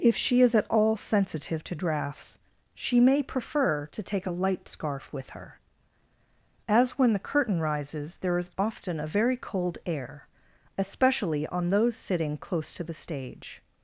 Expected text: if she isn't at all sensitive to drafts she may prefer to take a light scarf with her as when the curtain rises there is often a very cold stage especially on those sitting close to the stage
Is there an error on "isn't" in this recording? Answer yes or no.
yes